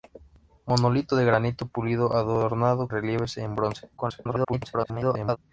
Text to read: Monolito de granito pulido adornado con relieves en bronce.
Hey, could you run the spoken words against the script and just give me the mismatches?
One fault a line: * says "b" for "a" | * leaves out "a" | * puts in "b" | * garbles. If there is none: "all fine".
* leaves out "con"
* garbles